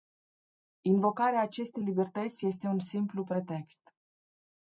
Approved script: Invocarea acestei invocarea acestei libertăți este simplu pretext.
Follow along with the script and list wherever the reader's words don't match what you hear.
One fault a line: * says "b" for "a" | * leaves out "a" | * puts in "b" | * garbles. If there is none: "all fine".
* leaves out "invocarea acestei"
* puts in "un"